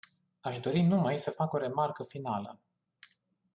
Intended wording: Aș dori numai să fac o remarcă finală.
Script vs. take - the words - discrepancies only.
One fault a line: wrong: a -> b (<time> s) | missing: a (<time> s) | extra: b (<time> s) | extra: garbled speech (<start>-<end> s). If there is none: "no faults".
no faults